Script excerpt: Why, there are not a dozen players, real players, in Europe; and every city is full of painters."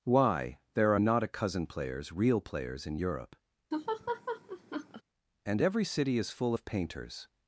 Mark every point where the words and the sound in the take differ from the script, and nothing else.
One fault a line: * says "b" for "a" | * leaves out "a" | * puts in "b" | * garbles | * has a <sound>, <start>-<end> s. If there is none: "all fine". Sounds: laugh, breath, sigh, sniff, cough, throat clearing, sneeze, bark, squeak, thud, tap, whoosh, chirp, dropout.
* says "cousin" for "dozen"
* has a laugh, 3.7-5.0 s